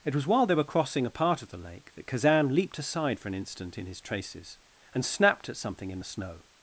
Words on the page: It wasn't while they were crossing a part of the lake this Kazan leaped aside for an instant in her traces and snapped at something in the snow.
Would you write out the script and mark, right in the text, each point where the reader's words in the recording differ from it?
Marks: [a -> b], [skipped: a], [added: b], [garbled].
It [wasn't -> was] while they were crossing a part of the lake [this -> that] Kazan leaped aside for an instant in [her -> his] traces and snapped at something in the snow.